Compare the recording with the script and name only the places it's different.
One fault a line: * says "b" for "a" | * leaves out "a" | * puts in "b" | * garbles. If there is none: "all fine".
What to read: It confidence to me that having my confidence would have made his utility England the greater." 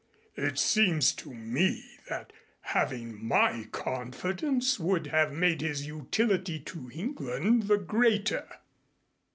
* says "seems" for "confidence"
* puts in "to"